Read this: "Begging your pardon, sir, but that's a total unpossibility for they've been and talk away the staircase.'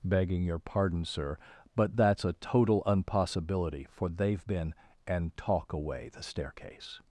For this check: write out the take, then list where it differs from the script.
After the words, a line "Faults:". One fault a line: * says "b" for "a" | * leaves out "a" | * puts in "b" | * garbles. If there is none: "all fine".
"Begging your pardon, sir, but that's a total unpossibility for they've been and talk away the staircase.'
Faults:
all fine